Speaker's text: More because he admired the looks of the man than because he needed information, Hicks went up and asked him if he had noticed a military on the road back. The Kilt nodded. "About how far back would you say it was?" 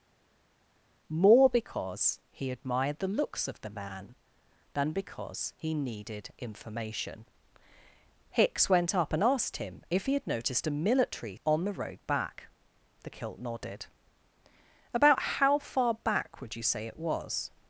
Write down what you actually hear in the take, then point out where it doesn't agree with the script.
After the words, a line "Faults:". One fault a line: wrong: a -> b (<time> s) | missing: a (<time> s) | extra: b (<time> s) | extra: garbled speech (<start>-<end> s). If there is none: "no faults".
More because he admired the looks of the man than because he needed information, Hicks went up and asked him if he had noticed a military on the road back. The Kilt nodded. "About how far back would you say it was?"
Faults:
no faults